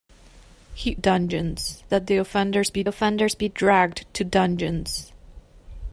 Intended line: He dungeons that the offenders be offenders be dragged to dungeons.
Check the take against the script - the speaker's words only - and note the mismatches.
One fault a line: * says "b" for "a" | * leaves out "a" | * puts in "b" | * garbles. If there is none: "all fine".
all fine